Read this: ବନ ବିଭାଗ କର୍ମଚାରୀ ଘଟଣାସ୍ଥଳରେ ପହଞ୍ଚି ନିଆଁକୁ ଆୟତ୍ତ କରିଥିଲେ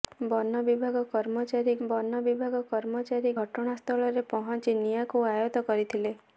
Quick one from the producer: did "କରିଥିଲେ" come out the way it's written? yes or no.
yes